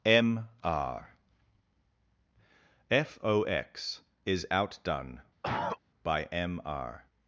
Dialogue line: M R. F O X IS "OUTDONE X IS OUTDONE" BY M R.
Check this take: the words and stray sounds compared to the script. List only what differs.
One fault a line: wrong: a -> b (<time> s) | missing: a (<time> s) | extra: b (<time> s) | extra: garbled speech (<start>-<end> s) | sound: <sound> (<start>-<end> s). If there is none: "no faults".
missing: X IS OUTDONE (5.2 s)
sound: cough (5.4-5.8 s)